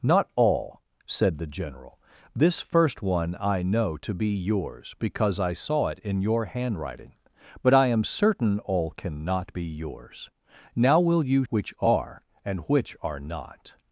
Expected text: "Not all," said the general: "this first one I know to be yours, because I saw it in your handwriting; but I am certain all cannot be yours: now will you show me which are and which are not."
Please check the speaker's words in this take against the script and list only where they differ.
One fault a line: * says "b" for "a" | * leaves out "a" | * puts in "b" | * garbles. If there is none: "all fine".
* leaves out "show me"